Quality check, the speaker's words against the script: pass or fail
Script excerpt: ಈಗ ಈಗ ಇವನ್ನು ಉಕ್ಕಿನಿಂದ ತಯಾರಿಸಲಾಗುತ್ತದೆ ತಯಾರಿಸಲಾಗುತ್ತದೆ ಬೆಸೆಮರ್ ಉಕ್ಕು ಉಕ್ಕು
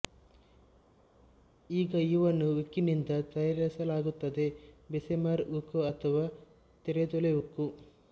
fail